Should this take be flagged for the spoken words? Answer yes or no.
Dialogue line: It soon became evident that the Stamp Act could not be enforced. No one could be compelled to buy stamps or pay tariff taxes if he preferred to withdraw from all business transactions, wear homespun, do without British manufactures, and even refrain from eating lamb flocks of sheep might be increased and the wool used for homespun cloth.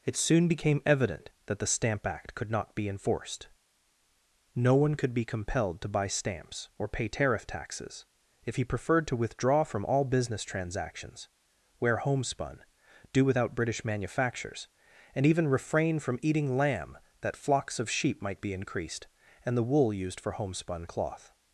yes